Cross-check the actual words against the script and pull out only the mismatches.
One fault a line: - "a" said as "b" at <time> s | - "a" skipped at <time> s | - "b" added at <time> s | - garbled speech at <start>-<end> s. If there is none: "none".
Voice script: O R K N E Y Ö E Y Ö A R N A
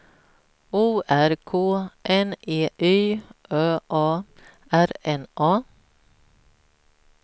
- "E Y Ö" skipped at 3.8 s